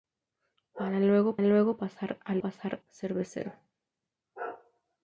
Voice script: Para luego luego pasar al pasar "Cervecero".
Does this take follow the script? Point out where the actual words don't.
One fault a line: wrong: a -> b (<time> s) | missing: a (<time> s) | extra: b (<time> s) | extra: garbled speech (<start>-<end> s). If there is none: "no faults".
no faults